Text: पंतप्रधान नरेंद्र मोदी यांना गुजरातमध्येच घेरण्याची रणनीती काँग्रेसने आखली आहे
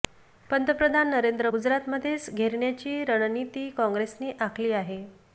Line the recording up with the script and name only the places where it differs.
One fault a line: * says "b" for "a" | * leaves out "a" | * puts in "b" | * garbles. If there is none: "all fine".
* leaves out "मोदी यांना"